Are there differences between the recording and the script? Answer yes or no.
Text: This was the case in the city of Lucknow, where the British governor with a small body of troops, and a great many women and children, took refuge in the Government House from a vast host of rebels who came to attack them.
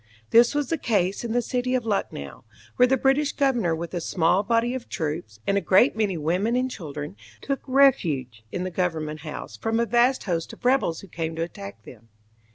no